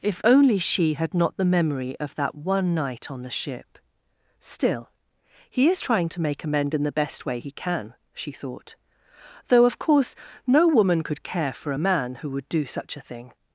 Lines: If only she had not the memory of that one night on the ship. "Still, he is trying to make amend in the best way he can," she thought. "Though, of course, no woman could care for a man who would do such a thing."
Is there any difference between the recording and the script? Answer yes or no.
no